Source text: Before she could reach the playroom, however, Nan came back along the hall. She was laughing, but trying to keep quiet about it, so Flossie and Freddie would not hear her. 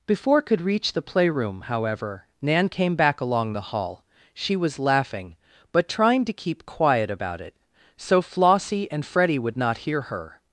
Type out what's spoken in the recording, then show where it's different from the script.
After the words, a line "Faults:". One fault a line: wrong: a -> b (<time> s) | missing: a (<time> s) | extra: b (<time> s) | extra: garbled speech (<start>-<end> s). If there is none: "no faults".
Before could reach the playroom, however, Nan came back along the hall. She was laughing, but trying to keep quiet about it, so Flossie and Freddie would not hear her.
Faults:
missing: she (0.4 s)